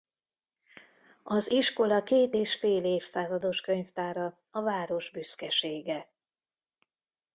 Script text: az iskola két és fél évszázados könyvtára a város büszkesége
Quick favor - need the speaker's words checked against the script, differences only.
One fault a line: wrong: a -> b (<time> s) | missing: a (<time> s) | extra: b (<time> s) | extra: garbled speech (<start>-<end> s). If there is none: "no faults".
no faults